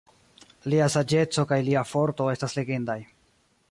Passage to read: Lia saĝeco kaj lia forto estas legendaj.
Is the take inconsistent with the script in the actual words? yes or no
no